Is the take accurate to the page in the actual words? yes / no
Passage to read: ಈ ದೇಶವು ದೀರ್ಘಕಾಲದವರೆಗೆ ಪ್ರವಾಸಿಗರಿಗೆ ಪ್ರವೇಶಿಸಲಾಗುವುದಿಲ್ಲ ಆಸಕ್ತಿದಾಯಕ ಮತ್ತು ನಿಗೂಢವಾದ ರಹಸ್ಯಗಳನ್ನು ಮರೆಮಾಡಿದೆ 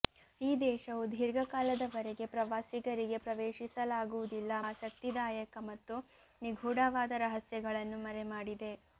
yes